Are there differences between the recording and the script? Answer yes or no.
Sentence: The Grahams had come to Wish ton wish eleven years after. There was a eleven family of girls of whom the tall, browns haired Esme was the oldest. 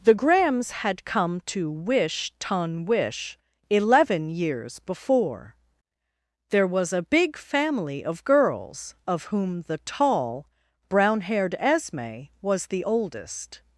yes